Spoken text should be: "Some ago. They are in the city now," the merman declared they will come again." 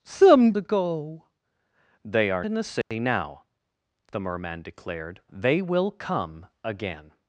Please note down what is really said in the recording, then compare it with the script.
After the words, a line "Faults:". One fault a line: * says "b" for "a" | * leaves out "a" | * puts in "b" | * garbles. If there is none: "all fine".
"Some ago. They are in the city now," the merman declared they will come again."
Faults:
all fine